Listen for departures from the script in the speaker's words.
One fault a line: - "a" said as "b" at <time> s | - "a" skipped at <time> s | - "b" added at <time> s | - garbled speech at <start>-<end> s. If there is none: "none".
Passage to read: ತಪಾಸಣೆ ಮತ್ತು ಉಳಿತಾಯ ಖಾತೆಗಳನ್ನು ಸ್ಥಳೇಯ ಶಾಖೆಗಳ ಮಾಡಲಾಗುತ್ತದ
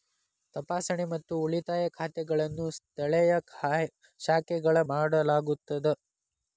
none